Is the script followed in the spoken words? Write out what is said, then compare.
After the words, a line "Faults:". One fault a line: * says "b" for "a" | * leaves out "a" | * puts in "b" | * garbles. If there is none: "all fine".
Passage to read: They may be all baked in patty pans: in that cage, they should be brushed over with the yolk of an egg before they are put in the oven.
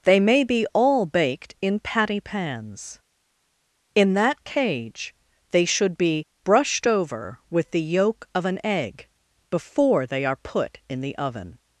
They may be all baked in patty pans: in that cage, they should be brushed over with the yolk of an egg before they are put in the oven.
Faults:
all fine